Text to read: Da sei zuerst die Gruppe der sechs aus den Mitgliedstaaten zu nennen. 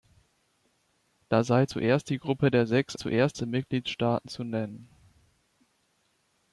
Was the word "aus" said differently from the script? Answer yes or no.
yes